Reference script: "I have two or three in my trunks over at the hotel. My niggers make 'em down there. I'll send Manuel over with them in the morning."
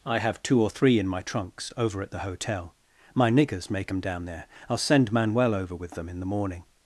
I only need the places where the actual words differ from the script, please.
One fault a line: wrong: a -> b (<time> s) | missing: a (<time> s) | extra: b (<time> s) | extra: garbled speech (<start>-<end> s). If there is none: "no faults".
no faults